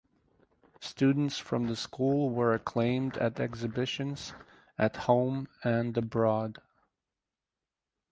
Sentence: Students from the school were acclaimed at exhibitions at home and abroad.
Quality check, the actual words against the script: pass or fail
pass